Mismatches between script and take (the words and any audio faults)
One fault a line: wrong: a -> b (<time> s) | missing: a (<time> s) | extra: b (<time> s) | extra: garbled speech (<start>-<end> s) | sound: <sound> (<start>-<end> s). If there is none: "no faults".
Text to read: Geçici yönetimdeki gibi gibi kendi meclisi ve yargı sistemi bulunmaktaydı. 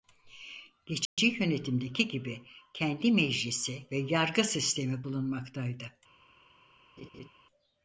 sound: dropout (1.1-1.2 s)
missing: gibi (2.4 s)
sound: laugh (7.0-7.3 s)